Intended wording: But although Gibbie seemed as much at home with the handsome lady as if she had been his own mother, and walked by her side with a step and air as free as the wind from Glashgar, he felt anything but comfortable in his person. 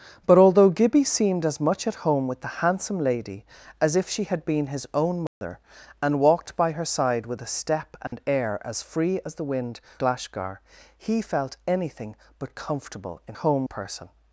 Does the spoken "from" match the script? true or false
false